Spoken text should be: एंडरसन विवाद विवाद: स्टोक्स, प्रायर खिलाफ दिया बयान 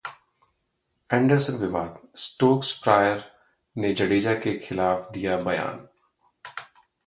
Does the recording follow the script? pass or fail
fail